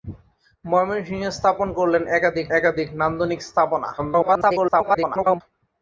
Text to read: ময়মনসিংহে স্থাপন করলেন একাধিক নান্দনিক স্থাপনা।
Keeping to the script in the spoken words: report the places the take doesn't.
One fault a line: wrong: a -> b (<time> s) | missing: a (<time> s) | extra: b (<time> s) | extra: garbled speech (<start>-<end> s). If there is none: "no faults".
extra: একাধিক (2.6 s)
extra: garbled speech (4.0-5.4 s)